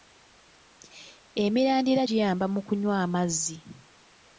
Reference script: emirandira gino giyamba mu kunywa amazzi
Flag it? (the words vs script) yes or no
yes